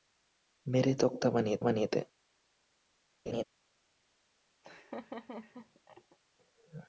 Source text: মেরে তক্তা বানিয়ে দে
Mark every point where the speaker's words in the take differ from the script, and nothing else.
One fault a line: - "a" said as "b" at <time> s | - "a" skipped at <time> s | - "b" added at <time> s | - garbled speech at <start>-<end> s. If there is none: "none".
- "বানিয়ে" added at 1.6 s